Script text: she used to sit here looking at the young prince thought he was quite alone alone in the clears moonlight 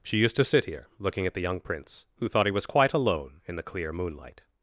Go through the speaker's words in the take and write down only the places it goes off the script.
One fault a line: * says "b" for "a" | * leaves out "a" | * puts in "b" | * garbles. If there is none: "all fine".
* puts in "who"
* leaves out "alone"
* says "clear" for "clears"